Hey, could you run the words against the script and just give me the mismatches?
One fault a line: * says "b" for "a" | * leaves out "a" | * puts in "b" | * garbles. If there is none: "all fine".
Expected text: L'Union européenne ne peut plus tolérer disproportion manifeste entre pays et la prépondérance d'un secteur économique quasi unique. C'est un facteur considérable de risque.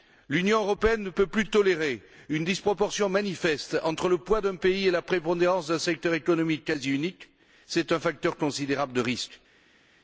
* puts in "une"
* puts in "le poids d'un"